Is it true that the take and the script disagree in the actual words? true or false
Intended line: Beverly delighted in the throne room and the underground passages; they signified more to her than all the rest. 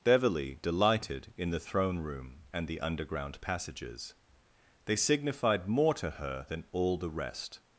false